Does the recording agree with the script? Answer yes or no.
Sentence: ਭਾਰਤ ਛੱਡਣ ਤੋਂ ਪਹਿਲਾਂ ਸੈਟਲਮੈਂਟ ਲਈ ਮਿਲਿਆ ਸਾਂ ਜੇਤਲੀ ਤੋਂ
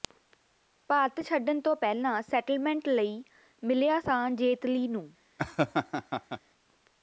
no